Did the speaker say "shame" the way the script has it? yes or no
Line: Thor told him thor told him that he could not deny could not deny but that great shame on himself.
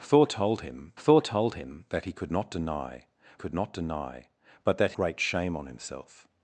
yes